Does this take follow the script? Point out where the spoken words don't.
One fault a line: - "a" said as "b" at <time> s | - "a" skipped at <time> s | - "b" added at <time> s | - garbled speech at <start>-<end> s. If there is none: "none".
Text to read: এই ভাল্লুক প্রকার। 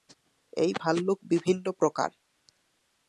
- "বিভিন্ন" added at 1.2 s